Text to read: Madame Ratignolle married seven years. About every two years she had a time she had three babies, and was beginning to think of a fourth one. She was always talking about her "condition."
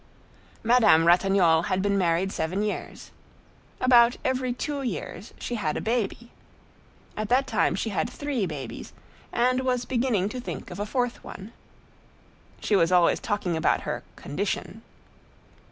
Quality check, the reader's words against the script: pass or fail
fail